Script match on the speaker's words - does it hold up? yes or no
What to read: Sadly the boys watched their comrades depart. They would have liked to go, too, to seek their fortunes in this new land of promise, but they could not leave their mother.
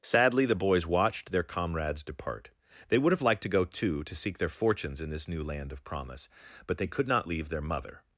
yes